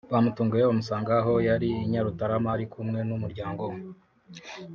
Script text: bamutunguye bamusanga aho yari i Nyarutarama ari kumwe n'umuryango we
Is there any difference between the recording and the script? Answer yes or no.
no